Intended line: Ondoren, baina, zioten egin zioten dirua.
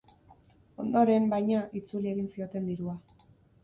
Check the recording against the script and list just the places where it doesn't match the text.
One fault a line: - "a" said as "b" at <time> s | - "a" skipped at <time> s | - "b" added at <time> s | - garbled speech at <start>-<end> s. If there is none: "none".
- "zioten" said as "itzuli" at 1.8 s